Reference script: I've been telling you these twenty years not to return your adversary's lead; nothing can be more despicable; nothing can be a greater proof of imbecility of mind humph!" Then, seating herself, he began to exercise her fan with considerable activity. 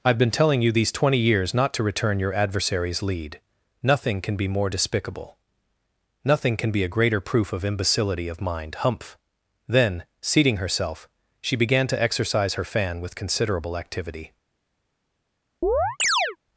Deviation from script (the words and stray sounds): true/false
true